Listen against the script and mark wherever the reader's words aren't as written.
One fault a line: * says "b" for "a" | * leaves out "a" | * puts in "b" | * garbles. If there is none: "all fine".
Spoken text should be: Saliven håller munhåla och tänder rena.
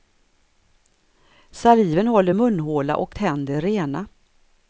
all fine